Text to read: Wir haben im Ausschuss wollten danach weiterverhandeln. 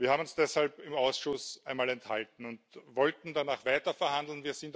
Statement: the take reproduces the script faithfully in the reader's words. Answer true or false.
false